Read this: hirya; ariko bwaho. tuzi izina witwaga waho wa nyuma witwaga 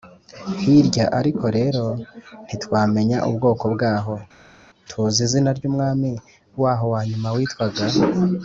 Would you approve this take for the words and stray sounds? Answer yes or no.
no